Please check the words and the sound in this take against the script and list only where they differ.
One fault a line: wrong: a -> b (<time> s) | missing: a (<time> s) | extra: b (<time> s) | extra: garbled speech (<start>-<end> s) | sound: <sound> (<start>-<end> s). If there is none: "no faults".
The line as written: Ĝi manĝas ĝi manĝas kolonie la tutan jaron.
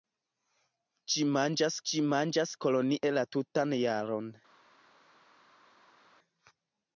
no faults